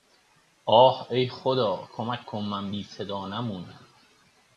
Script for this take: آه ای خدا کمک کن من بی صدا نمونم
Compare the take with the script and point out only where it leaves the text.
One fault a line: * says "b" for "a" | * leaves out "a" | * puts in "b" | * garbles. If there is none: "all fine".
all fine